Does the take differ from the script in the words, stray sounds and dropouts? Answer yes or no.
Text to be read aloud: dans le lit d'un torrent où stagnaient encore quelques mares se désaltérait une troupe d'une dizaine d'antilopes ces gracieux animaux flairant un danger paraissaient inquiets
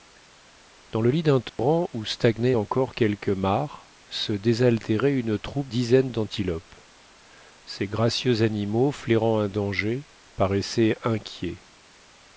yes